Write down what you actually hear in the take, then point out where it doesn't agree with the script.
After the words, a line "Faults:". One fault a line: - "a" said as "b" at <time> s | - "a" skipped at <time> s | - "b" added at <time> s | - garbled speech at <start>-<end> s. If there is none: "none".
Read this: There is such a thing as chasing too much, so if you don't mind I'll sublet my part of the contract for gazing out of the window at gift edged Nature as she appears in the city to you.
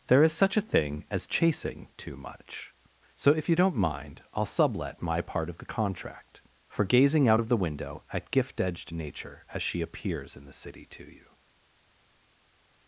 There is such a thing as chasing too much, so if you don't mind I'll sublet my part of the contract for gazing out of the window at gift edged Nature as she appears in the city to you.
Faults:
none